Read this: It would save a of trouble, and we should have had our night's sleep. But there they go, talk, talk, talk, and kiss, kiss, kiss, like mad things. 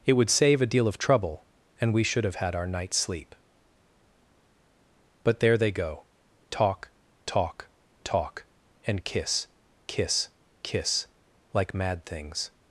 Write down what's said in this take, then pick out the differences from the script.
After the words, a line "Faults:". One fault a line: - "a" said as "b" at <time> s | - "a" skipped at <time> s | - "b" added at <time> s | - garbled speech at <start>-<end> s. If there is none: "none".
It would save a deal of trouble, and we should have had our night's sleep. But there they go, talk, talk, talk, and kiss, kiss, kiss, like mad things.
Faults:
- "deal" added at 0.7 s